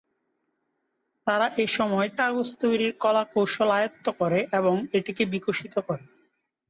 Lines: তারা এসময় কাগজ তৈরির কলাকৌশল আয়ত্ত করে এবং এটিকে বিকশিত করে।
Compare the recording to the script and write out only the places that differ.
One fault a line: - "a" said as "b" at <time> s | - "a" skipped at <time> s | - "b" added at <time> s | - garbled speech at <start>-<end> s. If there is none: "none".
none